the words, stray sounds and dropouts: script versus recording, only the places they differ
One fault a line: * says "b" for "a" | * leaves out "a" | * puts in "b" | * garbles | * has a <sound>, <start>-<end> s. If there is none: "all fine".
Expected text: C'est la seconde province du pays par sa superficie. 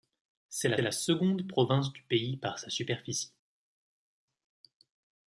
* puts in "la"